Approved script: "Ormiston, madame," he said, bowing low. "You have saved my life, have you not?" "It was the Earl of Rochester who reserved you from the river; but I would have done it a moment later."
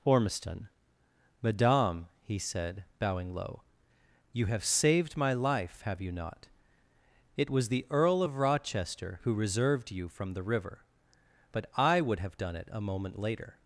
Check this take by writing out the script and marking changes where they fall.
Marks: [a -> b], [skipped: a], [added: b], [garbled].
"Ormiston, madame," he said, bowing low. "You have saved my life, have you not?" "It was the Earl of Rochester who reserved you from the river; but I would have done it a moment later."